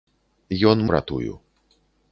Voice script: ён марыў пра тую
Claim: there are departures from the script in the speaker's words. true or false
true